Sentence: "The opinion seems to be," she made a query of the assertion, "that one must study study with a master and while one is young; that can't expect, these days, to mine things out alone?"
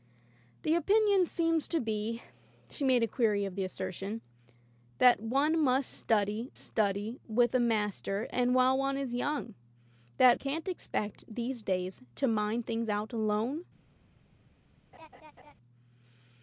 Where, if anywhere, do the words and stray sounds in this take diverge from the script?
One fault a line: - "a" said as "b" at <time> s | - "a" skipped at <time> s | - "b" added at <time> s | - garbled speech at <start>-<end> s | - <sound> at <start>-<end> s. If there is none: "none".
- laugh at 14.9-15.5 s